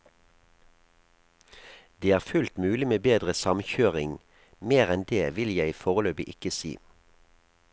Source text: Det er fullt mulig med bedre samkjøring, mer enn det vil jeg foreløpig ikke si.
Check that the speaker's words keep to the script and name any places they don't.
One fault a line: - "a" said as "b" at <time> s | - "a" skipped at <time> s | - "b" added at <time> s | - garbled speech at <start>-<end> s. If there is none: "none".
none